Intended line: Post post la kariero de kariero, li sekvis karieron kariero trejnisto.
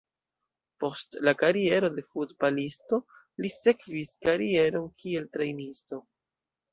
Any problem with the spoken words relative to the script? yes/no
yes